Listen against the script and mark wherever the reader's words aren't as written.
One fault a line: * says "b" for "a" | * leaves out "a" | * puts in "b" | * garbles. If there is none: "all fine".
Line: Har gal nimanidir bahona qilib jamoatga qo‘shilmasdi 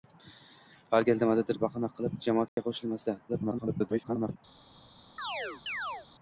* garbles